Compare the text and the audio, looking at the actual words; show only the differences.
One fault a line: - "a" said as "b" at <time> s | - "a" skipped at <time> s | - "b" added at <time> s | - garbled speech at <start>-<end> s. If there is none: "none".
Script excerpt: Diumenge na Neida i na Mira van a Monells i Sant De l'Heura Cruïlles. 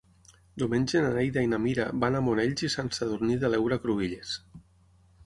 - "Sadurní" added at 3.0 s